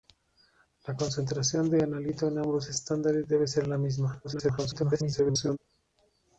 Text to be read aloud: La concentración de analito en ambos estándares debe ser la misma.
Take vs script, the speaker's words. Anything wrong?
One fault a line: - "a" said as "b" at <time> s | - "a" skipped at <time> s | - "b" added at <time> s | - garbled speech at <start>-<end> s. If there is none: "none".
- garbled speech at 4.2-5.6 s